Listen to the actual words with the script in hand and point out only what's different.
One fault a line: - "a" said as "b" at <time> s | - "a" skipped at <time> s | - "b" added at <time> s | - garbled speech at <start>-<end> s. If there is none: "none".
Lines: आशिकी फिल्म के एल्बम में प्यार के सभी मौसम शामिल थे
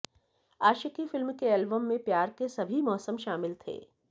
none